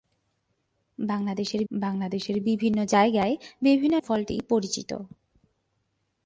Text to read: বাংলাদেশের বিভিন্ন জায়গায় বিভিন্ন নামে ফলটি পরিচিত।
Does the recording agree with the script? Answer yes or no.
no